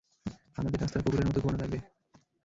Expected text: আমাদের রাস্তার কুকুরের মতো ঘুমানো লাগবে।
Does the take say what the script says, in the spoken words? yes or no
yes